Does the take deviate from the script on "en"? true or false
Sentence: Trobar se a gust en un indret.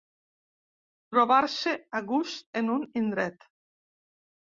false